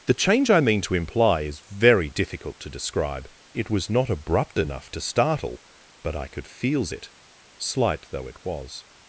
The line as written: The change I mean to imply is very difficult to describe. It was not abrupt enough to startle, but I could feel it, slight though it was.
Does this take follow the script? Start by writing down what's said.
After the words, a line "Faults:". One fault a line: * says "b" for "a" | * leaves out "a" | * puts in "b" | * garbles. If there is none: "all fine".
The change I mean to imply is very difficult to describe. It was not abrupt enough to startle, but I could feels it, slight though it was.
Faults:
* says "feels" for "feel"